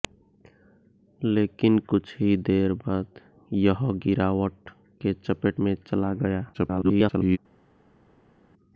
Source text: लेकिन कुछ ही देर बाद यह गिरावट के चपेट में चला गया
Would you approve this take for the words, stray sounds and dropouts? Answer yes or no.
no